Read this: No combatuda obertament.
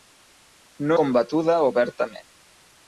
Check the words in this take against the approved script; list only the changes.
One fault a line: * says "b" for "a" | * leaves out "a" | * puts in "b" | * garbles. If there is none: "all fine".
all fine